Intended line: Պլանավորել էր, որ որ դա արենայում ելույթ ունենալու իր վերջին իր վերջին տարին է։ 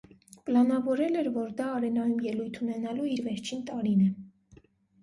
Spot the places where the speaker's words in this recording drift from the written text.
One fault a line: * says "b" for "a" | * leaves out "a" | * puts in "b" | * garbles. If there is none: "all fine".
* leaves out "որ"
* leaves out "իր վերջին"